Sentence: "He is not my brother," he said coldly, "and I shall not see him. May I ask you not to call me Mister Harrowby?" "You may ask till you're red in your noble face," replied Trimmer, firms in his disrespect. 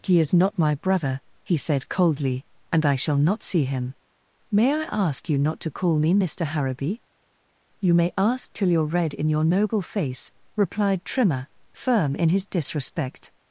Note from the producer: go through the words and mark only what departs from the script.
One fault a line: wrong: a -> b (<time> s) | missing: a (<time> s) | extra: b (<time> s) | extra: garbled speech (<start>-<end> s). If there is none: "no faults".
wrong: firms -> firm (11.7 s)